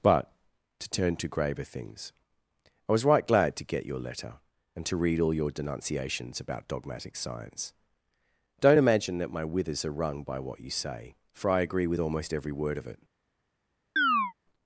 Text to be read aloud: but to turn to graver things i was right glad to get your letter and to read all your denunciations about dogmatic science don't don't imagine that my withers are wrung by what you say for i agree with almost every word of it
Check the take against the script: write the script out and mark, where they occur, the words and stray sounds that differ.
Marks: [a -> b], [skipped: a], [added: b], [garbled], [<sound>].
but to turn to graver things i was right glad to get your letter and to read all your denunciations about dogmatic science don't [skipped: don't] imagine that my withers are wrung by what you say for i agree with almost every word of it [chirp]